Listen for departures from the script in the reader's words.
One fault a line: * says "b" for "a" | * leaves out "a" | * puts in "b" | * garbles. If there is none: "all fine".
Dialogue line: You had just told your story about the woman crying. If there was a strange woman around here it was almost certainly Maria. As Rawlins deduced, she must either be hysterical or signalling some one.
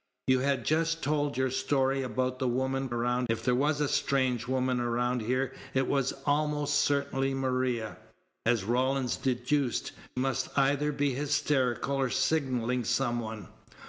* says "around" for "crying"
* leaves out "she"